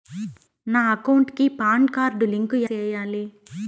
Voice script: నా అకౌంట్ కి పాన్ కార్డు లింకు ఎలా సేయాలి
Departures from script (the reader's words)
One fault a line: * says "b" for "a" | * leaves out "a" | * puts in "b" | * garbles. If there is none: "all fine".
* leaves out "ఎలా"